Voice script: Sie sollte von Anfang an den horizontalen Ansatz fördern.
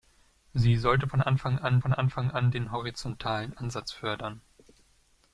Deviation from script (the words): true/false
true